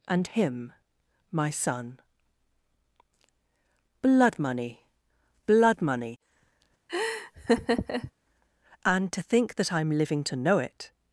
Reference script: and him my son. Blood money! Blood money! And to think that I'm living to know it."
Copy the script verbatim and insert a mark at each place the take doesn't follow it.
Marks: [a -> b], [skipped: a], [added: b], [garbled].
and him my son. Blood money! Blood money! And to think that I'm living to know it."